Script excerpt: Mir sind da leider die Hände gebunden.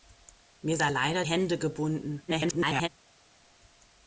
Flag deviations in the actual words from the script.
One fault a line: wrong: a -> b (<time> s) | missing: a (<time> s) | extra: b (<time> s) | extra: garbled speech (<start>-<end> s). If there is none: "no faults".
missing: sind (0.8 s)
missing: die (1.3 s)
extra: garbled speech (2.3-2.9 s)